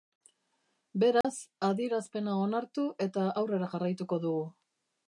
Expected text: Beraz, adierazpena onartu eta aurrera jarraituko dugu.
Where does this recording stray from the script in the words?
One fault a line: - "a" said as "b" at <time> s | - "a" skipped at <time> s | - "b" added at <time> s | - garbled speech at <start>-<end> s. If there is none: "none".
none